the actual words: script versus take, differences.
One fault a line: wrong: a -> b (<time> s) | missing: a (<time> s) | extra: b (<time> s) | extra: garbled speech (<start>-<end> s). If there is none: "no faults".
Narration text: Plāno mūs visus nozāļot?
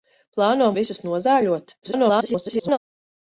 missing: mūs (0.7 s)
extra: garbled speech (1.8-2.8 s)